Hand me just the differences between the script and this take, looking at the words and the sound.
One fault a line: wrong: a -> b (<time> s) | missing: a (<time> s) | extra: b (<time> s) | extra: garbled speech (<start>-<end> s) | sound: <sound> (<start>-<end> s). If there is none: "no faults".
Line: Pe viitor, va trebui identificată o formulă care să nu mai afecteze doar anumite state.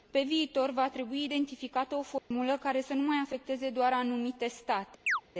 sound: dropout (2.2-2.3 s)
sound: chirp (5.1-5.2 s)